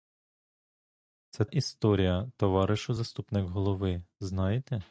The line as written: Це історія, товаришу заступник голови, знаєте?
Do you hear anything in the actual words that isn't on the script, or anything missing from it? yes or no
no